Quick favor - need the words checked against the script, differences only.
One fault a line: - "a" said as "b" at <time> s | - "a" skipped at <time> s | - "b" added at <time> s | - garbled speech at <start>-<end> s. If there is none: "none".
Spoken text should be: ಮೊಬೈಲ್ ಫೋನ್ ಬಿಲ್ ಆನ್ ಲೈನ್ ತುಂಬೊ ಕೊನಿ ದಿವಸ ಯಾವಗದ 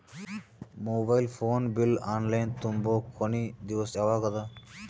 none